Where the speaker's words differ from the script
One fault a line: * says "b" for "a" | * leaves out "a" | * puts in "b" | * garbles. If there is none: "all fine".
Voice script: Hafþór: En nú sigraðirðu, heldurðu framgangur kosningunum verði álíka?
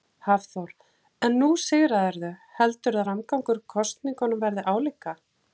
all fine